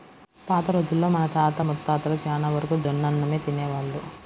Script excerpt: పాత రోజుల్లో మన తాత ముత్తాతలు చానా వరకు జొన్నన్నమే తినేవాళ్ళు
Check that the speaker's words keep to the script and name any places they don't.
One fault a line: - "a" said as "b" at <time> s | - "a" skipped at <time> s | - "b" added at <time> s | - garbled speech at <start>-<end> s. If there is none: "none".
none